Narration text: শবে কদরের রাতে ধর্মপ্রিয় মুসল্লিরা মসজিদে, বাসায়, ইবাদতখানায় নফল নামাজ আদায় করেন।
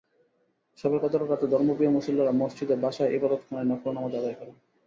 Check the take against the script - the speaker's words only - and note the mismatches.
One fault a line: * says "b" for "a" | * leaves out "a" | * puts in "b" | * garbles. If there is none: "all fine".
all fine